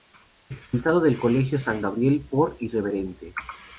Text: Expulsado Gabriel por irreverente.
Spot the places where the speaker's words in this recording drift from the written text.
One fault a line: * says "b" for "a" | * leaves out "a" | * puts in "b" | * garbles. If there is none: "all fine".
* puts in "del Colegio San"